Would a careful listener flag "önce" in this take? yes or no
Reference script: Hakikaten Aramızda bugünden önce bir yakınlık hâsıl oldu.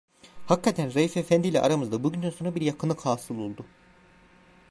yes